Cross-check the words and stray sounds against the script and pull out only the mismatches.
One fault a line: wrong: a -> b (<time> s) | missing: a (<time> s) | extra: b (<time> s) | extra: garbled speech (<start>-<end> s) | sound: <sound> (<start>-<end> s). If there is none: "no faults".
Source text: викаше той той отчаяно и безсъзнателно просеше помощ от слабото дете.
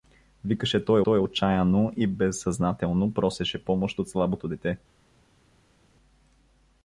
no faults